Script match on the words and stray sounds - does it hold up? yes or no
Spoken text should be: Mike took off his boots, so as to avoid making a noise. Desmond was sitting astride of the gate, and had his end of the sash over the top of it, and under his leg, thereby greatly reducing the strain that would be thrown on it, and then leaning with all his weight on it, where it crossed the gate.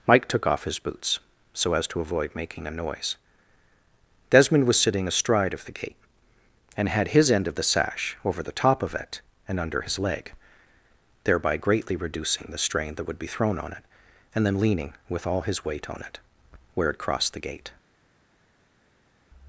yes